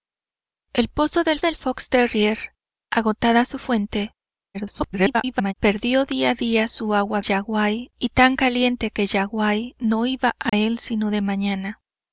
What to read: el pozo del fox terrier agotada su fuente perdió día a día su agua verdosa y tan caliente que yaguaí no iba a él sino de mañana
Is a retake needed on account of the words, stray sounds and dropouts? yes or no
yes